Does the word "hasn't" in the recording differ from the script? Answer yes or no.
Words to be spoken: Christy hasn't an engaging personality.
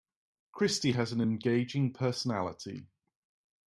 yes